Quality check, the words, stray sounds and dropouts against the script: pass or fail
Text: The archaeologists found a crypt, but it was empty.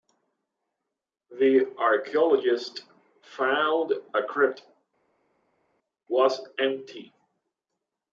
fail